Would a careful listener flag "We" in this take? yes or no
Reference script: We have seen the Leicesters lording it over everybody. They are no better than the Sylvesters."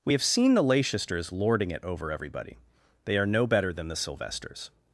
no